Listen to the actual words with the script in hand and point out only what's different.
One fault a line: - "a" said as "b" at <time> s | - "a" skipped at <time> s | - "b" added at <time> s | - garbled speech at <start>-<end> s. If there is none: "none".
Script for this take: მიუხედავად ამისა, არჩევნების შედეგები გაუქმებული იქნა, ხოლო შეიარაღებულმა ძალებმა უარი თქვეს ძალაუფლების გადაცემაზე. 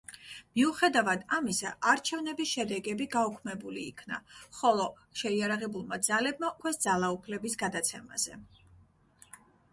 - "უარი" skipped at 6.5 s